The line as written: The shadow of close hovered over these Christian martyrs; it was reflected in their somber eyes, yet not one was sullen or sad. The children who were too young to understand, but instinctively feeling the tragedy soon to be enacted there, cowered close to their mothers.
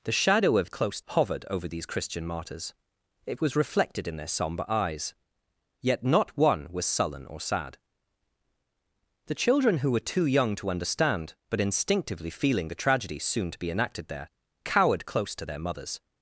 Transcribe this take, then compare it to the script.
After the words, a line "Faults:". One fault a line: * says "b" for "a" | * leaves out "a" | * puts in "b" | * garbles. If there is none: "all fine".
The shadow of close hovered over these Christian martyrs; it was reflected in their somber eyes, yet not one was sullen or sad. The children who were too young to understand, but instinctively feeling the tragedy soon to be enacted there, cowered close to their mothers.
Faults:
all fine